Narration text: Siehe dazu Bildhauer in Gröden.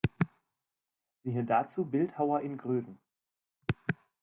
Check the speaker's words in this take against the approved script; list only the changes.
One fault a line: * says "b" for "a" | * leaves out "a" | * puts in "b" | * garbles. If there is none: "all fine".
all fine